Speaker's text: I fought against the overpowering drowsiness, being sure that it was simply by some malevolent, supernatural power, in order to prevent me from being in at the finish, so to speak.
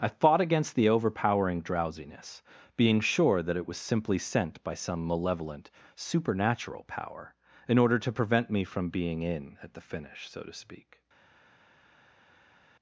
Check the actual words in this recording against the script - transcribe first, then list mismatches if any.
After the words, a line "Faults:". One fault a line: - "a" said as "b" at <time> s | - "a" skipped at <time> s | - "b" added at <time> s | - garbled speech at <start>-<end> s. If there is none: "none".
I fought against the overpowering drowsiness, being sure that it was simply sent by some malevolent, supernatural power, in order to prevent me from being in at the finish, so to speak.
Faults:
- "sent" added at 4.2 s